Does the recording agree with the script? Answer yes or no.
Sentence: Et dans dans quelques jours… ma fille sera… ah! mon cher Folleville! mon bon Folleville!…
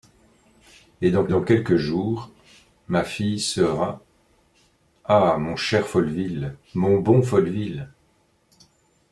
yes